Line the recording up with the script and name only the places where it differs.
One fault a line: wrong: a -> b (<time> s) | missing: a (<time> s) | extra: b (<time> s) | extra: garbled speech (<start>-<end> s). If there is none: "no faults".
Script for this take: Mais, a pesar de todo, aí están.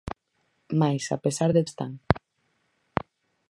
missing: todo aí (1.6 s)